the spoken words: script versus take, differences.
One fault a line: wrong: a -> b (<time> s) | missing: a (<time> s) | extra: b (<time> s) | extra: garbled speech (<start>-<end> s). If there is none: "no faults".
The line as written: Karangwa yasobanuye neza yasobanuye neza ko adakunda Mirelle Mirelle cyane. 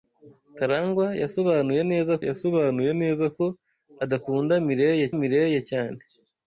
no faults